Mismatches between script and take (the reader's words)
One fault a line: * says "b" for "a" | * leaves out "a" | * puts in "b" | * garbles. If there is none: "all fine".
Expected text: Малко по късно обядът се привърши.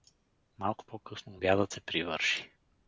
all fine